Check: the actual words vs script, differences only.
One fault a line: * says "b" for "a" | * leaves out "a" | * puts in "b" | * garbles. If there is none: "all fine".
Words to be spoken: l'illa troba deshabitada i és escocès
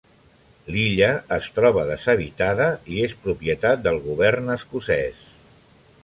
* puts in "es"
* puts in "propietat del govern"